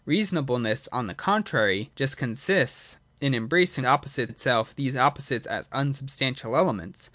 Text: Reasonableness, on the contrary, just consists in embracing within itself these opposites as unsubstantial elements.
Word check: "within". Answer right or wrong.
wrong